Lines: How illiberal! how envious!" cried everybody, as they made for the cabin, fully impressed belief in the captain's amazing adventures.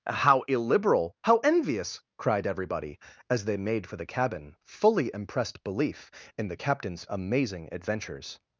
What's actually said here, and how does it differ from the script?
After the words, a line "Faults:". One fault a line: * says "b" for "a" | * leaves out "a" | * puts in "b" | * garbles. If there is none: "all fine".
How illiberal! how envious!" cried everybody, as they made for the cabin, fully impressed belief in the captain's amazing adventures.
Faults:
all fine